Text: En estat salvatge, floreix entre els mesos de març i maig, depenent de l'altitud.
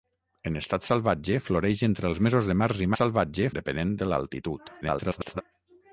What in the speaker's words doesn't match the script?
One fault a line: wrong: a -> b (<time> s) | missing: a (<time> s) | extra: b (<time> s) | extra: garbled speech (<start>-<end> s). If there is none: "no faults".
wrong: maig -> salvatge (3.0 s)
extra: garbled speech (4.8-5.4 s)